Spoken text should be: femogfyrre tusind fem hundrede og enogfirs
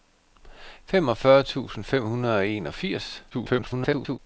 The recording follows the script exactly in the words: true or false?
false